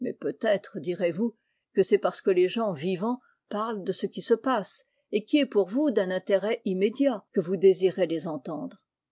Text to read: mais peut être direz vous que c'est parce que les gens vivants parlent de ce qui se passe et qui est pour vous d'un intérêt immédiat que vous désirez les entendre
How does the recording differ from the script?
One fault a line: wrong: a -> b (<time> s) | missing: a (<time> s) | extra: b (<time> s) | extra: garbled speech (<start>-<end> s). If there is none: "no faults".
no faults